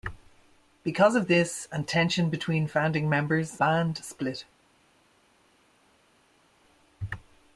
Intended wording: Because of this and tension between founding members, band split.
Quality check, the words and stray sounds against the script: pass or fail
pass